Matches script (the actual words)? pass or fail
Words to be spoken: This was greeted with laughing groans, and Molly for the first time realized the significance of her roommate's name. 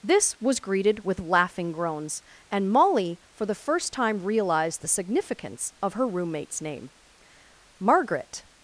fail